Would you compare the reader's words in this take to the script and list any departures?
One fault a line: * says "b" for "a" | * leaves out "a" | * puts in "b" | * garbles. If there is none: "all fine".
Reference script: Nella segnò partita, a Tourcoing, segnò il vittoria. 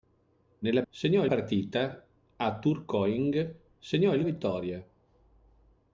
all fine